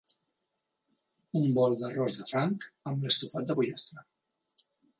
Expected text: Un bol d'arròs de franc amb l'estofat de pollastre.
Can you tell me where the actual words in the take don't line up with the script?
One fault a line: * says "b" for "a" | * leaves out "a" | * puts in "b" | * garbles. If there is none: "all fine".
all fine